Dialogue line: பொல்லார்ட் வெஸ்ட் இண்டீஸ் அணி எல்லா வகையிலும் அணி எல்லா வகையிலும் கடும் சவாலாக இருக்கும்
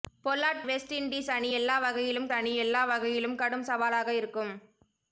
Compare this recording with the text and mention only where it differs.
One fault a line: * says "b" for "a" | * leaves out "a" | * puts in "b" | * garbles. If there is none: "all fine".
all fine